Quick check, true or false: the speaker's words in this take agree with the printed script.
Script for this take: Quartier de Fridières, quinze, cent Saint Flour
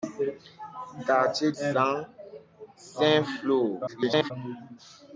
false